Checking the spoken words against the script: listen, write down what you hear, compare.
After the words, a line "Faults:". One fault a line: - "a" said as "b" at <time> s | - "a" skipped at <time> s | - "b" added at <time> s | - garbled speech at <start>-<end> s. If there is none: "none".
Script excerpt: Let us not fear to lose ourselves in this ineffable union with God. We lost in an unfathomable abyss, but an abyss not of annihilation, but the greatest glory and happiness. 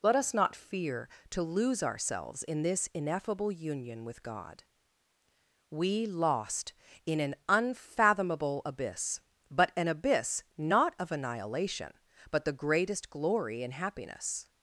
Let us not fear to lose ourselves in this ineffable union with God. We lost in an unfathomable abyss, but an abyss not of annihilation, but the greatest glory and happiness.
Faults:
none